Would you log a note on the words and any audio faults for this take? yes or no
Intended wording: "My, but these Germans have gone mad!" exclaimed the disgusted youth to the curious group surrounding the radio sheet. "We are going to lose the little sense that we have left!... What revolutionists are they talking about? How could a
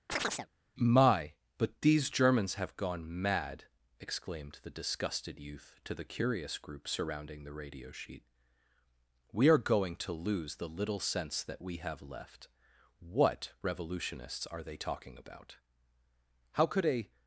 yes